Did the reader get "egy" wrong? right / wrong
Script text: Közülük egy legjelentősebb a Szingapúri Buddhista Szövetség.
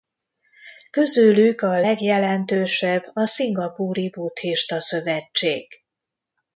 wrong